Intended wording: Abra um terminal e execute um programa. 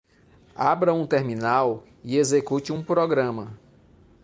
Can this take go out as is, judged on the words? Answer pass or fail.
pass